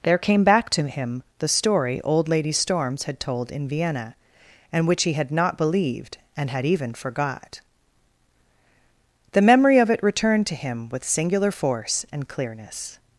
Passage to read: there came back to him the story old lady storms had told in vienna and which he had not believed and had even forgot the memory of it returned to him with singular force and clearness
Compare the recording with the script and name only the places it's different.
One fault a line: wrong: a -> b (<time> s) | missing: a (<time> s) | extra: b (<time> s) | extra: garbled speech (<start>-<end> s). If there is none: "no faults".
no faults